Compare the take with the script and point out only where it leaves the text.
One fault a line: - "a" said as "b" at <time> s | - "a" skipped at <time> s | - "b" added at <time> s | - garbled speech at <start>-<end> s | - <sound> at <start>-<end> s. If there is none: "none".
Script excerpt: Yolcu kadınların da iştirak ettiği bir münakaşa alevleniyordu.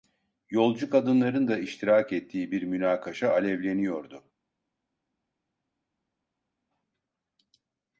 none